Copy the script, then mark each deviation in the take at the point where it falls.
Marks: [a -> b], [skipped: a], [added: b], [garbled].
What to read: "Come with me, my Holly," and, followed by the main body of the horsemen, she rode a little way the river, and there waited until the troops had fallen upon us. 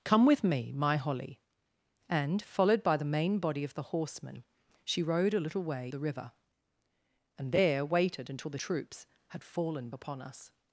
"Come with me, my Holly," and, followed by the main body of the horsemen, she rode a little way the river, and there waited until the troops had fallen upon us.